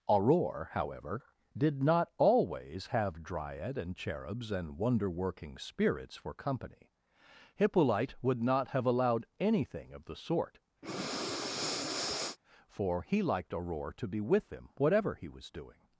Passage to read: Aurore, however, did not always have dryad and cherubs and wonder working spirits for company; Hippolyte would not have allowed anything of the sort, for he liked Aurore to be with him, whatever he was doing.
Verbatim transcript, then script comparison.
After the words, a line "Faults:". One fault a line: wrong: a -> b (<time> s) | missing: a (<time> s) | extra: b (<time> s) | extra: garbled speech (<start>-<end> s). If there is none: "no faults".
Aurore, however, did not always have dryad and cherubs and wonder working spirits for company; Hippolyte would not have allowed anything of the sort, for he liked Aurore to be with him, whatever he was doing.
Faults:
no faults